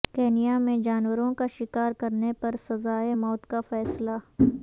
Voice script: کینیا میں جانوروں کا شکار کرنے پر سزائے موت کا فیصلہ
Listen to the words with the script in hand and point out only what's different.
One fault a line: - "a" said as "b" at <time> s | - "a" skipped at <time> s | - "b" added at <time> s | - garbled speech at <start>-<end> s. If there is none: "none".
none